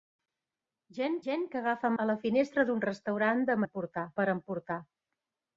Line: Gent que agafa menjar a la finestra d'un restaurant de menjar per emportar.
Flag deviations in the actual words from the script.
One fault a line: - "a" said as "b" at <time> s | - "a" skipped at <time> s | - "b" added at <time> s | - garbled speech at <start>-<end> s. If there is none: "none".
- "gent" added at 1.3 s
- "menjar" skipped at 1.9 s
- "menjar" said as "emportar" at 3.7 s